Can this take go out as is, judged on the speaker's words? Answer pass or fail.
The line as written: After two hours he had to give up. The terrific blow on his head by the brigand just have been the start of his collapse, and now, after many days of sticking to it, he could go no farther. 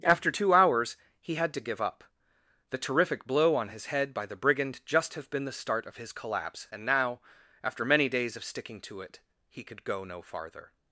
pass